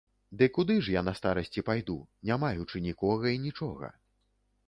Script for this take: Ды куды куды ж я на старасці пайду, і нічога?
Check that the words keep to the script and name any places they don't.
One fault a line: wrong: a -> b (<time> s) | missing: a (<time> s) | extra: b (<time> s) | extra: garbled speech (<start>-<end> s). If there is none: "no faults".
missing: куды (0.8 s)
extra: не маючы нікога (2.3 s)